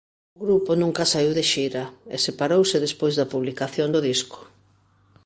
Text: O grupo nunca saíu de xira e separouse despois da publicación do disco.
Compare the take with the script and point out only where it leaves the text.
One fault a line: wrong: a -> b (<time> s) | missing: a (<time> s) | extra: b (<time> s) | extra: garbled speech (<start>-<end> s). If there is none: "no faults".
no faults